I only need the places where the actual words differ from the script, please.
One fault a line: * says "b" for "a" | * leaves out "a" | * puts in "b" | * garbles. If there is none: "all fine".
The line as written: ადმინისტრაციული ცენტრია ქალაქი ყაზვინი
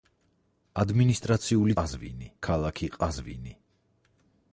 * says "ყაზვინი" for "ცენტრია"